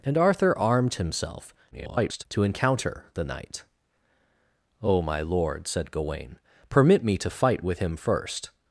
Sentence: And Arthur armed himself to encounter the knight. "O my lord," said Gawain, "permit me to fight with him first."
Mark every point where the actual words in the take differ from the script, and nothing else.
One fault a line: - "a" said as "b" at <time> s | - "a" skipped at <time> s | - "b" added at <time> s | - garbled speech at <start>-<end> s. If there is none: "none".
- garbled speech at 1.7-2.2 s